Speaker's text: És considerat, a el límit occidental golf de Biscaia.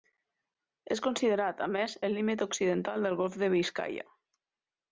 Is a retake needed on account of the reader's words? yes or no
yes